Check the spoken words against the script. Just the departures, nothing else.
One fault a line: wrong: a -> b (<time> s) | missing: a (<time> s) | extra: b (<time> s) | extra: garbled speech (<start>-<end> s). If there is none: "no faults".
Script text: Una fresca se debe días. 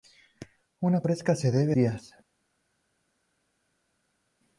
no faults